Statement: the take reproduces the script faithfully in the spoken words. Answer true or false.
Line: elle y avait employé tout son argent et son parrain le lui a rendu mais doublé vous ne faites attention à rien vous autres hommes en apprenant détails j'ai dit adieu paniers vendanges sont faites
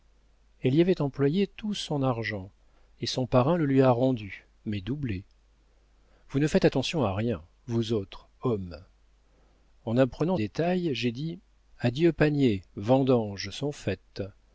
true